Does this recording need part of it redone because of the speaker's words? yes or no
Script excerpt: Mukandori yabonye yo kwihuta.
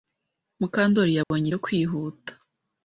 no